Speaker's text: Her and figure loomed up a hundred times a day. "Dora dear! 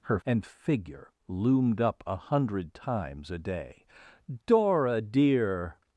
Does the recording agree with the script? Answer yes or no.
yes